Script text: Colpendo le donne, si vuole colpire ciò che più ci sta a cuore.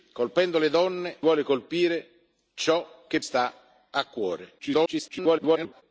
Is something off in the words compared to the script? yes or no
yes